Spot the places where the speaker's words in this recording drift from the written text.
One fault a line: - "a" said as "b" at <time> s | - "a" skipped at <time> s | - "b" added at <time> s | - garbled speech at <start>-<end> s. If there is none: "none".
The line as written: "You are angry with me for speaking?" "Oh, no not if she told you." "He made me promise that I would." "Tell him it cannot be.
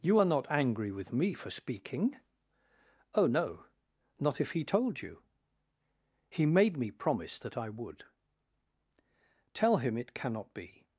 - "not" added at 0.2 s
- "she" said as "he" at 4.5 s